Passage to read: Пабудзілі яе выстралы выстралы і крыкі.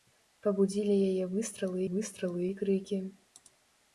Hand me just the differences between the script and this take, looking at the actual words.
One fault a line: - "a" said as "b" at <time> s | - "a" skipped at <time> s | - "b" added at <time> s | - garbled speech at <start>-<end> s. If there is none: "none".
none